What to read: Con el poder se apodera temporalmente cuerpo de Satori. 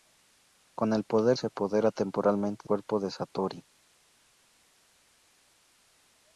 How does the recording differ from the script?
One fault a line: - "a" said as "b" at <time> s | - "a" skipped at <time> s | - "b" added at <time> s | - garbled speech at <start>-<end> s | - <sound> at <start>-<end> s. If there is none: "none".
none